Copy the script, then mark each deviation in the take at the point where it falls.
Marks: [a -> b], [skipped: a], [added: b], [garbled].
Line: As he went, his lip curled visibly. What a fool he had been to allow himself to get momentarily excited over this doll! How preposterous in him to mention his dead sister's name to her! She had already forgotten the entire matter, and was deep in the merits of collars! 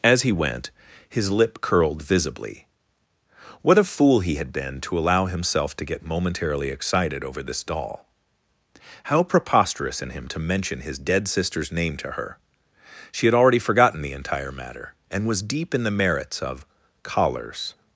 As he went, his lip curled visibly. What a fool he had been to allow himself to get momentarily excited over this doll! How preposterous in him to mention his dead sister's name to her! She had already forgotten the entire matter, and was deep in the merits of collars!